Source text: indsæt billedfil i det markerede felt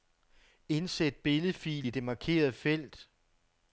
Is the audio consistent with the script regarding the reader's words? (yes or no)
yes